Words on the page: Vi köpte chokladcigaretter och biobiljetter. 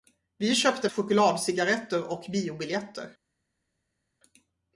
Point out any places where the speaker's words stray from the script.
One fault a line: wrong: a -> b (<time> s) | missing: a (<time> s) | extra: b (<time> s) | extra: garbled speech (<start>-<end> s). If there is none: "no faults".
no faults